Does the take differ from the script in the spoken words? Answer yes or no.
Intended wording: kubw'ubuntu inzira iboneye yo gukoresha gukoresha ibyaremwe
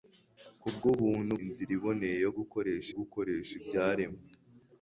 no